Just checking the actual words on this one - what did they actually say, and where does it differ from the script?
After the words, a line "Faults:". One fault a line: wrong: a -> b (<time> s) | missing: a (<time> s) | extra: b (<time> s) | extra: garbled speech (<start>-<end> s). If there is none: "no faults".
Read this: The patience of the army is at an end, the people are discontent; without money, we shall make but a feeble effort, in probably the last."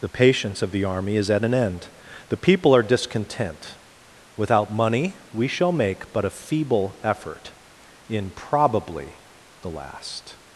The patience of the army is at an end, the people are discontent; without money, we shall make but a feeble effort, in probably the last."
Faults:
no faults